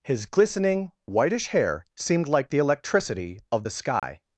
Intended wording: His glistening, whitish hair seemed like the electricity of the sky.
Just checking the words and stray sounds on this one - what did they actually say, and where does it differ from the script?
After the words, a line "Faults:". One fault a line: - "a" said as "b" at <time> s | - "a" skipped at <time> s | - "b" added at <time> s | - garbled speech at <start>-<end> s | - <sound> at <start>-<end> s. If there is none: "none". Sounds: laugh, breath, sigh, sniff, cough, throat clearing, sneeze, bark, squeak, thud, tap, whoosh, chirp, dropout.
His glistening, whitish hair seemed like the electricity of the sky.
Faults:
- dropout at 4.0-4.0 s